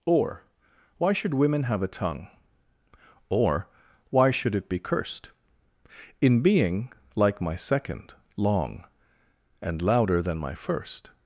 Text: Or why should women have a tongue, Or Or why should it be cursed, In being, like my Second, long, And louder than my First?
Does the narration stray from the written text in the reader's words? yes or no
yes